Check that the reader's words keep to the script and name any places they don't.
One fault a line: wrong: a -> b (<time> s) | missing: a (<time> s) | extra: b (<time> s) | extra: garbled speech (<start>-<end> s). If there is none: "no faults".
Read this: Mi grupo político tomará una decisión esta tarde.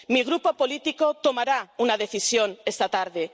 no faults